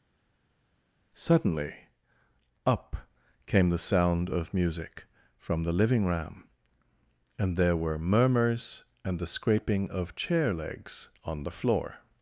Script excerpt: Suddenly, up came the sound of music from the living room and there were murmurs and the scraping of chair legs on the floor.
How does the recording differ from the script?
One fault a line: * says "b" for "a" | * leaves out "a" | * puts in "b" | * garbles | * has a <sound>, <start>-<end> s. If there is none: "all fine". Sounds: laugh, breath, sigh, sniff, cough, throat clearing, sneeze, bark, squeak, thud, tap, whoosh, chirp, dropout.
* says "ram" for "room"